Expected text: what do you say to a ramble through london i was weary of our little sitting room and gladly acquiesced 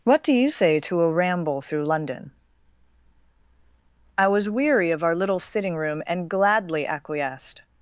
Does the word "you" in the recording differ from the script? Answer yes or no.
no